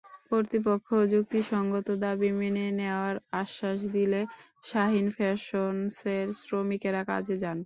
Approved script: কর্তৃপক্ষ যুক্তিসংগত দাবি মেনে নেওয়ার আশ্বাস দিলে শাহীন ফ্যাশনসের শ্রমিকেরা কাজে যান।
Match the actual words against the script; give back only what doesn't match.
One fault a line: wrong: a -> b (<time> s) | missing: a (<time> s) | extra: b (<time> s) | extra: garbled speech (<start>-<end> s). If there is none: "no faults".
no faults